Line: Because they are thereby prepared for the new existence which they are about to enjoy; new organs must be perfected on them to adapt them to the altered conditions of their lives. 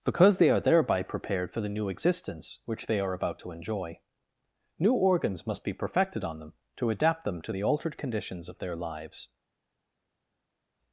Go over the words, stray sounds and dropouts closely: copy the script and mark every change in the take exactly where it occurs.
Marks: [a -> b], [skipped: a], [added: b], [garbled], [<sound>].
Because they are thereby prepared for the new existence which they are about to enjoy; new organs must be perfected on them to adapt them to the altered conditions of their lives.